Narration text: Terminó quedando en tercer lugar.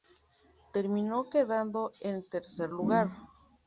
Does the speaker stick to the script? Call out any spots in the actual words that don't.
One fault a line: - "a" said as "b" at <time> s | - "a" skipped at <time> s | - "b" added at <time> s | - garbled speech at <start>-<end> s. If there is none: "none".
none